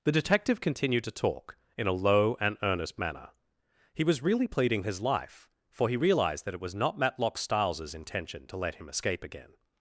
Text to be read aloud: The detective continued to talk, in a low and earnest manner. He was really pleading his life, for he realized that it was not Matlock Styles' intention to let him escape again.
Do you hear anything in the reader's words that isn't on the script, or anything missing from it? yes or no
no